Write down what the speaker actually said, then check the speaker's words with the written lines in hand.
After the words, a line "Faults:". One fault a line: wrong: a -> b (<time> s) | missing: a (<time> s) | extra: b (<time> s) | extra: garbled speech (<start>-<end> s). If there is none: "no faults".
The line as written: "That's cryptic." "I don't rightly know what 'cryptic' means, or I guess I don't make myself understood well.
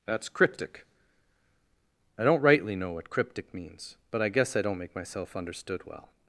"That's cryptic." "I don't rightly know what 'cryptic' means, but I guess I don't make myself understood well.
Faults:
wrong: or -> but (4.1 s)